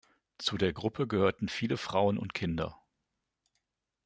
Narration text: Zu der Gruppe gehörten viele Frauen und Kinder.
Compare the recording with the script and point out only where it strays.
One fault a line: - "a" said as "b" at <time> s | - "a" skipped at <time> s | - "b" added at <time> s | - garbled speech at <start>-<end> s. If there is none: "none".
none